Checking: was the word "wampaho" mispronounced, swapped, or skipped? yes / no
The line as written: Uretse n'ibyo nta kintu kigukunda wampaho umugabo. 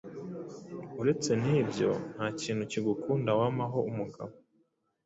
no